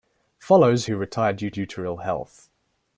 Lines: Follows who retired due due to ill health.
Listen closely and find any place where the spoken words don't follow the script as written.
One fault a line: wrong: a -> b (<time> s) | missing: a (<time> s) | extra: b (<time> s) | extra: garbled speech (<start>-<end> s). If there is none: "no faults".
no faults